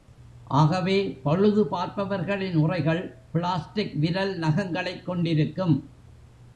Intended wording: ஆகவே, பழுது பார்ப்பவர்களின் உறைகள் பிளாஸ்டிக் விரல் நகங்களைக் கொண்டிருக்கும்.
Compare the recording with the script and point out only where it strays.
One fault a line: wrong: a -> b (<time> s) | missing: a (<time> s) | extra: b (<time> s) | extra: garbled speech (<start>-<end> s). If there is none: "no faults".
no faults